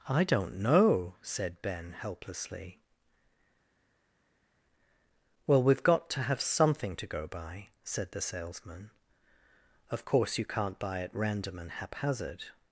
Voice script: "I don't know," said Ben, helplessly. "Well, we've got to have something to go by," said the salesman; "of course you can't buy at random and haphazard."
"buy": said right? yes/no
yes